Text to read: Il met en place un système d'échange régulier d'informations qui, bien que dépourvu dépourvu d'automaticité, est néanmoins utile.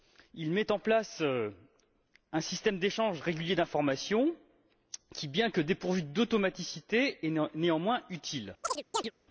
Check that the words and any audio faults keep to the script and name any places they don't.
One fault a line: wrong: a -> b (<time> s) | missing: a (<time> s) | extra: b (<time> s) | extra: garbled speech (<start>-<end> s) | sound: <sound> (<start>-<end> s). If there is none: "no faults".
missing: dépourvu (6.0 s)
sound: chirp (8.6-9.1 s)